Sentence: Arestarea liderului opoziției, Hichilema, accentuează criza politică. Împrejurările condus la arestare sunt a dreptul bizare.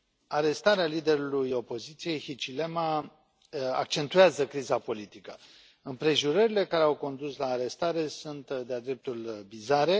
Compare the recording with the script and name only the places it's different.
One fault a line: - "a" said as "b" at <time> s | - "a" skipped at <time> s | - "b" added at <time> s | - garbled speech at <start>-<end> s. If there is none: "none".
- "care au" added at 6.7 s
- "de" added at 8.5 s